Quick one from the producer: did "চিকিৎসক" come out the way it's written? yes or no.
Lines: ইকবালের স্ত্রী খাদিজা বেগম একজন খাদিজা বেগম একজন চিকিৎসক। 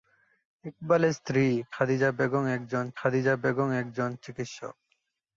yes